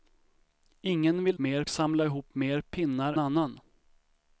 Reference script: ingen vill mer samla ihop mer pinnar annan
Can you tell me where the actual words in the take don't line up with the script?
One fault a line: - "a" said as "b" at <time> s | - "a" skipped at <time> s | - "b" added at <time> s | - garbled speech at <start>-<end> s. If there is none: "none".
none